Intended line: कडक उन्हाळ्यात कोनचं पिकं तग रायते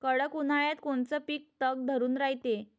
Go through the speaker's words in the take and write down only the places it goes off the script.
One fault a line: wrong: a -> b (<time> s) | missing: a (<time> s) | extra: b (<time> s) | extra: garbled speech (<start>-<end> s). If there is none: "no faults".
extra: धरून (1.9 s)